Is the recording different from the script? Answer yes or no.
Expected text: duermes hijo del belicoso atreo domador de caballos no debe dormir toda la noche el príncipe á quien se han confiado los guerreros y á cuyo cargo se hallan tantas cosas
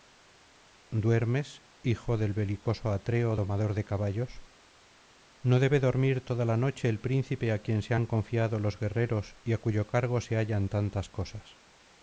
no